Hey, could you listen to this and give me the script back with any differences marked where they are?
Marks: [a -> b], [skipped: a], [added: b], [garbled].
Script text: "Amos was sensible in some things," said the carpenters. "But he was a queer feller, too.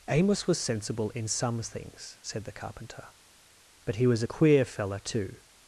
"Amos was sensible in some things," said the [carpenters. -> carpenter] "But he was a queer feller, too.